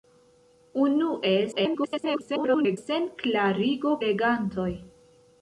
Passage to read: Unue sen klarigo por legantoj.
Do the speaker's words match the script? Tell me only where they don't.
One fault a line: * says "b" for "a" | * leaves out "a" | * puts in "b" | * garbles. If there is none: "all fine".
* garbles
* leaves out "por"